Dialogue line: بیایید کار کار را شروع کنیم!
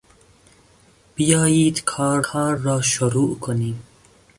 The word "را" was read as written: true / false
true